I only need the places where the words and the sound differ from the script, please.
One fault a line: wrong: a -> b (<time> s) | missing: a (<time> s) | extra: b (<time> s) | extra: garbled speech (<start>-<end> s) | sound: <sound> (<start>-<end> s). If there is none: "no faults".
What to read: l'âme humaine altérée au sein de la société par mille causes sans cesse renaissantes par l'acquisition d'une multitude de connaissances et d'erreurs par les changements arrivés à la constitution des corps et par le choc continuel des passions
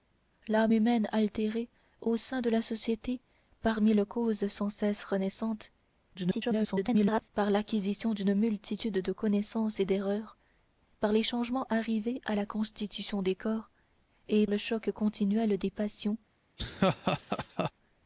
extra: garbled speech (6.1-7.3 s)
missing: par (14.5 s)
sound: laugh (16.6-17.7 s)